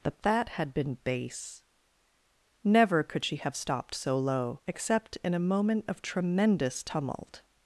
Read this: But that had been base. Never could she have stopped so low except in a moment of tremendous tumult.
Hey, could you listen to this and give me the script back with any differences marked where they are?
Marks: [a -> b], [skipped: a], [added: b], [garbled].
But that had been base. Never could she have stopped so low except in a moment of tremendous tumult.